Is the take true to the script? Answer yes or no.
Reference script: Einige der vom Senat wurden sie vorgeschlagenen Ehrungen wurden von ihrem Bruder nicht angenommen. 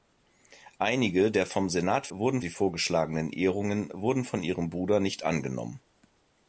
yes